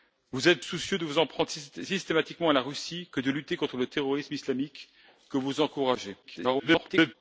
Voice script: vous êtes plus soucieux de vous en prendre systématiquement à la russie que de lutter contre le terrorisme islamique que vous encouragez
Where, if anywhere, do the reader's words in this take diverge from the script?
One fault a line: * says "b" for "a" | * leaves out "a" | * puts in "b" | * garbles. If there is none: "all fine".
* leaves out "plus"
* garbles